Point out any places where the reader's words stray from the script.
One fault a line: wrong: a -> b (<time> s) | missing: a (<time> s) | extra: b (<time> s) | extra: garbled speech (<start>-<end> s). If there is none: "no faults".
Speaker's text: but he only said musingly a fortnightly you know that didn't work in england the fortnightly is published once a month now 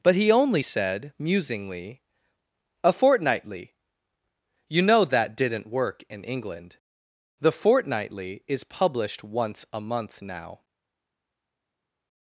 no faults